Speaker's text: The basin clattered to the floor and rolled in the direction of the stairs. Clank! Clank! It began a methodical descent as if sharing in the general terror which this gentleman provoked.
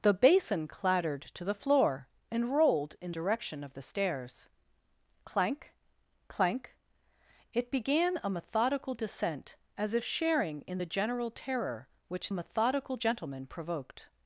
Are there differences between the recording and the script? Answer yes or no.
yes